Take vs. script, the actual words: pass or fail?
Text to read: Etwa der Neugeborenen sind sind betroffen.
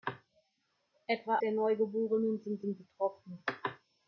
pass